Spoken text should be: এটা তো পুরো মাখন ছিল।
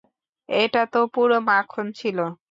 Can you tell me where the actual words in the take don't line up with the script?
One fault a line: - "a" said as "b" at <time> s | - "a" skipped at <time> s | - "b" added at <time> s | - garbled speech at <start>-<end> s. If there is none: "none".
none